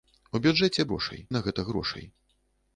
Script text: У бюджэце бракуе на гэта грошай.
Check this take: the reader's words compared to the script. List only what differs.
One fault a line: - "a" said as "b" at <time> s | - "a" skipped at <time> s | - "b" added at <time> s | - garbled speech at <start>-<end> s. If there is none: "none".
- "бракуе" said as "грошай" at 0.9 s